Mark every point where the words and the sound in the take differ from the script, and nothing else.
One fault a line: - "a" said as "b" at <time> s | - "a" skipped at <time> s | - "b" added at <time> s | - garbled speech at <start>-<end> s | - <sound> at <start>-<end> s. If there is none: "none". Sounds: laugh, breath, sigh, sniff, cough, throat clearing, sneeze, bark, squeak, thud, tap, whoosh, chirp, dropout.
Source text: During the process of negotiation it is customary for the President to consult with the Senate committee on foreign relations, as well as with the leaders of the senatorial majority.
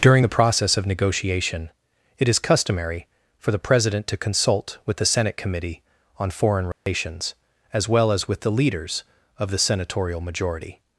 - dropout at 6.7-6.9 s